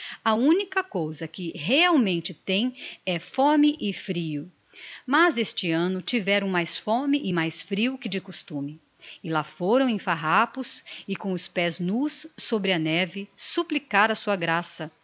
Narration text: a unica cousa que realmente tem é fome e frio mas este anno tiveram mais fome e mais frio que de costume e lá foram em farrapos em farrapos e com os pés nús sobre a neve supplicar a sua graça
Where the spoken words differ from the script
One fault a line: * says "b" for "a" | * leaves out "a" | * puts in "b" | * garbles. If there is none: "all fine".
* leaves out "em farrapos"